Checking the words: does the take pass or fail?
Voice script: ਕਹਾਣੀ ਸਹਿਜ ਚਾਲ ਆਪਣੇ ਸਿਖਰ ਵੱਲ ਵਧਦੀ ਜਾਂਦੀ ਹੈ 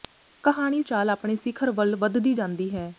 fail